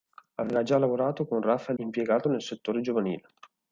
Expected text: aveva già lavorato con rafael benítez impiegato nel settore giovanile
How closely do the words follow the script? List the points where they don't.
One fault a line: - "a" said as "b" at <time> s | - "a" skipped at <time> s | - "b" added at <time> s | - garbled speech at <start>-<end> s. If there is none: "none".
- "benítez" skipped at 1.8 s